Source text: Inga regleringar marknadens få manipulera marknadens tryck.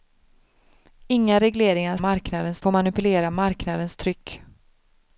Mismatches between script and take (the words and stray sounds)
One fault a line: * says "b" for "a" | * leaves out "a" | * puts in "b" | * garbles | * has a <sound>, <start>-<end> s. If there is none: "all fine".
all fine